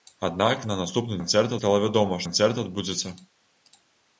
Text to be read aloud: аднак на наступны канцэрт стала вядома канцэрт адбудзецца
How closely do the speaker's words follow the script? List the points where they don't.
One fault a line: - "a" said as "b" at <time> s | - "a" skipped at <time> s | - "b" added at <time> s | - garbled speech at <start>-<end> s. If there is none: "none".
none